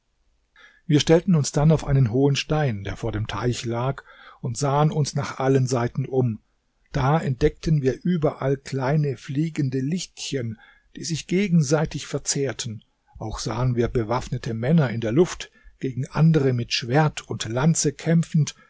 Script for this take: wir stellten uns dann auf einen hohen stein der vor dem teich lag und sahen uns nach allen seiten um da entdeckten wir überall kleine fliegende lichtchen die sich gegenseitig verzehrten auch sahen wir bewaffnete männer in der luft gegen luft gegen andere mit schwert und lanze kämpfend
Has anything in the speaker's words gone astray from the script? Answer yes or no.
yes